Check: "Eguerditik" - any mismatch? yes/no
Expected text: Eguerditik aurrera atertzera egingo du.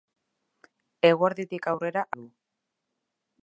no